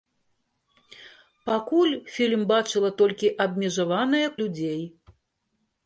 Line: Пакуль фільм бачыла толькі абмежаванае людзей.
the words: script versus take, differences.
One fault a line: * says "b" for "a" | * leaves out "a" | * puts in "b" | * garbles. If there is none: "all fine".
all fine